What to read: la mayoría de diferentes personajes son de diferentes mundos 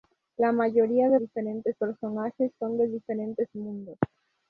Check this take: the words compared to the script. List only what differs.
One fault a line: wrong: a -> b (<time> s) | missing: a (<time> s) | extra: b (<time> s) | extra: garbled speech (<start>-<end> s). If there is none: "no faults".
no faults